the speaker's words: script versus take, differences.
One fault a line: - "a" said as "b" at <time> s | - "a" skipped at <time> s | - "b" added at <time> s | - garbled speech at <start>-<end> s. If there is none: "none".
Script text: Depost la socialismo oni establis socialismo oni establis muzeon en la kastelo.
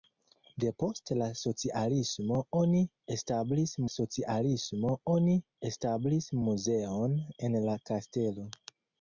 none